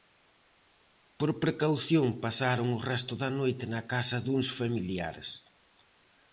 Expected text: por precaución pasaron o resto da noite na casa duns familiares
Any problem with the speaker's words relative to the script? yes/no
no